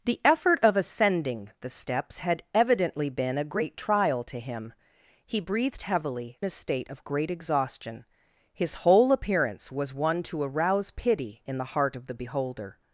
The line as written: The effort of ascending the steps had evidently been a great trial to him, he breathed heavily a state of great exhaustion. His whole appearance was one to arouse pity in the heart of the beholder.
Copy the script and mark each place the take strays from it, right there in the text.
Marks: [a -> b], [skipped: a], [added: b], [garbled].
The effort of ascending the steps had evidently been a great trial to him, he breathed heavily a state of great exhaustion. His whole appearance was one to arouse pity in the heart of the beholder.